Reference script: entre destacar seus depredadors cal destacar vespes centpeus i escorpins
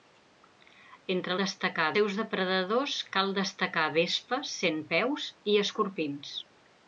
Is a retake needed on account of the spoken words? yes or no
no